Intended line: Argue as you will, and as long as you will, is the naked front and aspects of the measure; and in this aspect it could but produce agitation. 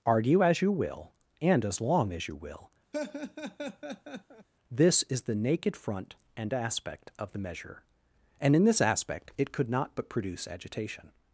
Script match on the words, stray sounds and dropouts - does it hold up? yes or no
no